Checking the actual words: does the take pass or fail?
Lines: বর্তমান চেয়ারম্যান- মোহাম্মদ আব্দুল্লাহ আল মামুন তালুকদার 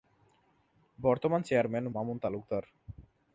fail